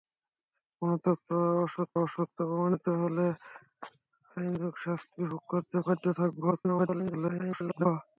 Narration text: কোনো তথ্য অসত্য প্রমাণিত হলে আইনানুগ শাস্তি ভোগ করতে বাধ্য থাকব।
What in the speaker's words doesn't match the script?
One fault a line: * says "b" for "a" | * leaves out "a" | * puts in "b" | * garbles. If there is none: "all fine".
* puts in "অসত্য"
* garbles